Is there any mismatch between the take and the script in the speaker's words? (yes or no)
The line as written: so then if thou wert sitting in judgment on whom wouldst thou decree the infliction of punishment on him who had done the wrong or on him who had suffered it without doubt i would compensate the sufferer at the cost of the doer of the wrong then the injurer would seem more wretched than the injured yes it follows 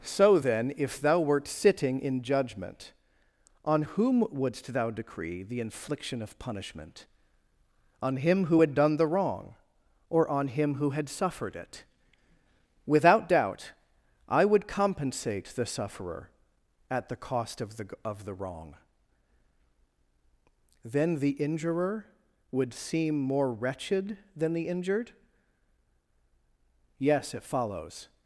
yes